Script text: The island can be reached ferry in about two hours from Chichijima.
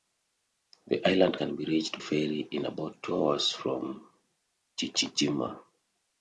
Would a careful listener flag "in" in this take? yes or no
no